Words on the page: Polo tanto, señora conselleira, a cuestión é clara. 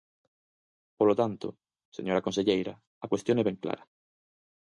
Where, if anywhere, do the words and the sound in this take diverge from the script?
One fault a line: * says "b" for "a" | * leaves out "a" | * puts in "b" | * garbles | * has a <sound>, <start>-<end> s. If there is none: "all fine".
* puts in "ben"